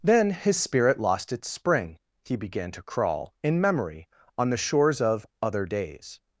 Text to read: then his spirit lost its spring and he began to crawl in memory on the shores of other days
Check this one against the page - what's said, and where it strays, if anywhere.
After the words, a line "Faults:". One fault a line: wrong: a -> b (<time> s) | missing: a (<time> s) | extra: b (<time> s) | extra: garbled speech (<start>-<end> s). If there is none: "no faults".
then his spirit lost its spring he began to crawl in memory on the shores of other days
Faults:
missing: and (2.0 s)